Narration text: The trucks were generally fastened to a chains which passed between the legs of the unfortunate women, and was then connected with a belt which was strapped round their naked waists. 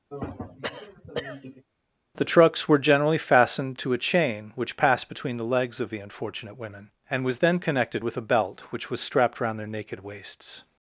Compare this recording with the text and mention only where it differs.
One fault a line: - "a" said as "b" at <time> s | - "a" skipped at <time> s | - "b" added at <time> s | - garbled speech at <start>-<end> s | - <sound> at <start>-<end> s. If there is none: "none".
- throat clearing at 0.1-1.6 s
- "chains" said as "chain" at 4.0 s